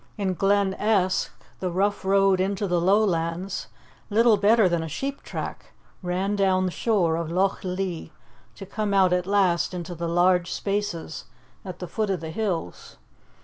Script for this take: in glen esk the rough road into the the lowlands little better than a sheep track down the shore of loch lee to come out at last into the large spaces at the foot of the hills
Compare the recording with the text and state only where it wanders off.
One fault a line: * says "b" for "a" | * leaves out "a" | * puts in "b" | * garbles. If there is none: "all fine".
* leaves out "the"
* puts in "ran"